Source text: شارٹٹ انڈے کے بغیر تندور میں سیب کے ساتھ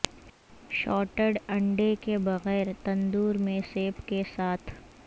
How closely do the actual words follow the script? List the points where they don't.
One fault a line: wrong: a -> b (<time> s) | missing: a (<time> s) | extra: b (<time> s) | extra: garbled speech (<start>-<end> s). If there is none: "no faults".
no faults